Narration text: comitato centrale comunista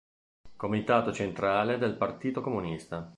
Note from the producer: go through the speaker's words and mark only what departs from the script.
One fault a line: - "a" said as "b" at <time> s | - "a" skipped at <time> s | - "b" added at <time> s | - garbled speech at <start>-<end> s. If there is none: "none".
- "del partito" added at 1.8 s